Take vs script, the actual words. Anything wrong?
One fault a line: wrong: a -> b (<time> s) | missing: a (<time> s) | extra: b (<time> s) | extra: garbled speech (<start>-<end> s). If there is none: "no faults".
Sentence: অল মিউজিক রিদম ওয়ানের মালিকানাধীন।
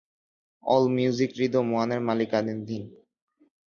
no faults